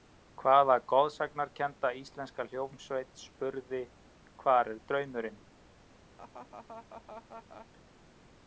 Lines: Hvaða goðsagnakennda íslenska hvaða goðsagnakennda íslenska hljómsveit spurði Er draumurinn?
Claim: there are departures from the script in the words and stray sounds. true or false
true